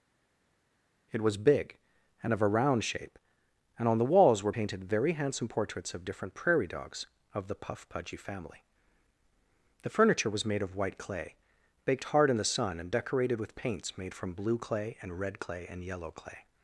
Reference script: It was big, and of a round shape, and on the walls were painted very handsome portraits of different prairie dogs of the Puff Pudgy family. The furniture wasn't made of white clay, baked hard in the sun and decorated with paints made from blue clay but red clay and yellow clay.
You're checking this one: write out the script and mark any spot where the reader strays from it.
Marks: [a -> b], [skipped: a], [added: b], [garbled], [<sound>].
It was big, and of a round shape, and on the walls were painted very handsome portraits of different prairie dogs of the Puff Pudgy family. The furniture [wasn't -> was] made of white clay, baked hard in the sun and decorated with paints made from blue clay [but -> and] red clay and yellow clay.